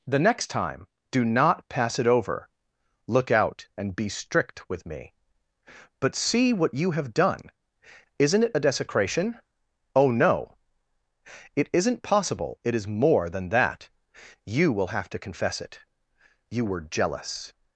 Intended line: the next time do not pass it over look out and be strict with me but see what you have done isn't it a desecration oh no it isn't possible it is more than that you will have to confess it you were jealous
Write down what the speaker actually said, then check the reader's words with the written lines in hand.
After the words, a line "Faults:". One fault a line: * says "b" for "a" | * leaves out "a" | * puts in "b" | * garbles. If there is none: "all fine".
the next time do not pass it over look out and be strict with me but see what you have done isn't it a desecration oh no it isn't possible it is more than that you will have to confess it you were jealous
Faults:
all fine